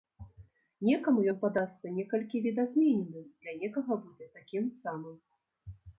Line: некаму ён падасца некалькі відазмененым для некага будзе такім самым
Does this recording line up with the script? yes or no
yes